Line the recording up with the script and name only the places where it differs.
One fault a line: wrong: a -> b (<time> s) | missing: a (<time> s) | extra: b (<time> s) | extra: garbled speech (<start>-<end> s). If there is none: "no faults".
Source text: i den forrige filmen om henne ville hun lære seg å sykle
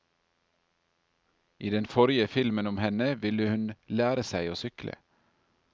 no faults